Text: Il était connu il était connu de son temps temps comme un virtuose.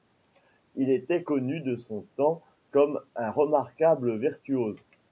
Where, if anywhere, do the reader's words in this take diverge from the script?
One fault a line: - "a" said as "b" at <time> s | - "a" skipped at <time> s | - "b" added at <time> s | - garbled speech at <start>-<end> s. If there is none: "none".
- "il était connu" skipped at 1.6 s
- "temps" skipped at 2.4 s
- "remarquable" added at 3.3 s